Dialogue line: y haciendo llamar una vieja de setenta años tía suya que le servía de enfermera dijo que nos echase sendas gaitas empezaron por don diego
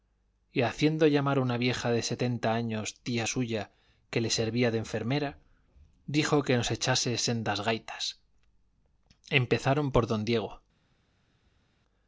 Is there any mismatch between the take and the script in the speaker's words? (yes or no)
no